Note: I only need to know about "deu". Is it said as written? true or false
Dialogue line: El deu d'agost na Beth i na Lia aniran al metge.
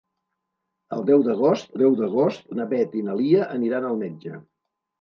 true